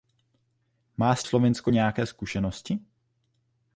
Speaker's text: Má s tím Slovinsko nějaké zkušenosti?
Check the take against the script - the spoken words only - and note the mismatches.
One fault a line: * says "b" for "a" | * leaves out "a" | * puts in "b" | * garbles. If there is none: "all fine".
* leaves out "tím"